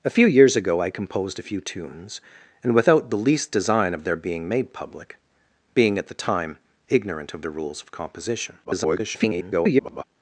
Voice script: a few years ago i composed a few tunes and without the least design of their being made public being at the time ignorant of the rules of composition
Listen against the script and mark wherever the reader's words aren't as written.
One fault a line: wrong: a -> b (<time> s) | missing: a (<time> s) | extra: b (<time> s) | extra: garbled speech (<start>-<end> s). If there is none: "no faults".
extra: garbled speech (8.6-10.0 s)